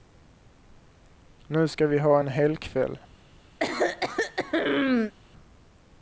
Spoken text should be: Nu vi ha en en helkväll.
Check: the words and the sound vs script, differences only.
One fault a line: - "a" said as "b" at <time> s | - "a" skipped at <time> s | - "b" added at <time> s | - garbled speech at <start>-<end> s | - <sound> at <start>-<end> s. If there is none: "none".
- "ska" added at 1.7 s
- "en" skipped at 2.3 s
- throat clearing at 3.6-5.1 s